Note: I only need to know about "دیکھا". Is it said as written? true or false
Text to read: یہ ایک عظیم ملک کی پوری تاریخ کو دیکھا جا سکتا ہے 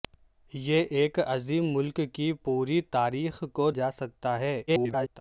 false